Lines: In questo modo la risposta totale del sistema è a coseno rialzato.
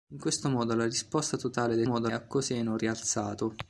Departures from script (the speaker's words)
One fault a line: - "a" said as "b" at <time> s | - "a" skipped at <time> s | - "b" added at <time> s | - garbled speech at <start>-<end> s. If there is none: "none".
- "sistema" said as "modo" at 1.8 s